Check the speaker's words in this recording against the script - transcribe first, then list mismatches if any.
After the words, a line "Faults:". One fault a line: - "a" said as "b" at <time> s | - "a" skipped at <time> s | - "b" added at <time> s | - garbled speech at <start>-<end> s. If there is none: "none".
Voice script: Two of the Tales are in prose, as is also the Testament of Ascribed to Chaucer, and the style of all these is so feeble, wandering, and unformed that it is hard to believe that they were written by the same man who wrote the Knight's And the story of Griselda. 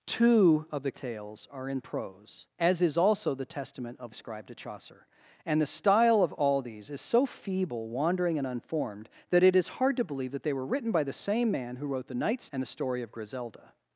Two of the Tales are in prose, as is also the Testament of Ascribed to Chaucer, and the style of all these is so feeble, wandering, and unformed that it is hard to believe that they were written by the same man who wrote the Knight's And the story of Griselda.
Faults:
none